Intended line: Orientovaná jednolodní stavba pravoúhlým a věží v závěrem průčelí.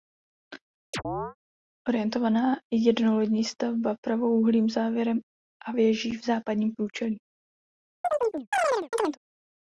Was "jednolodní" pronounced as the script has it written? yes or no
yes